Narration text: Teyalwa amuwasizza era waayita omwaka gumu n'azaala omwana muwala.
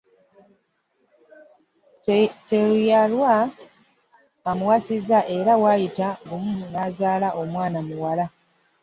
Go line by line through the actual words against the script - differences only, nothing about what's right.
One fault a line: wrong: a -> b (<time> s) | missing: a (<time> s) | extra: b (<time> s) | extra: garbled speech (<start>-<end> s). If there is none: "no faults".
missing: omwaka (6.1 s)